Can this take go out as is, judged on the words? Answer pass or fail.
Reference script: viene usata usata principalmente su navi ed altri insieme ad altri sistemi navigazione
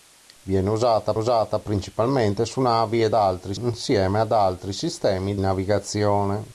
pass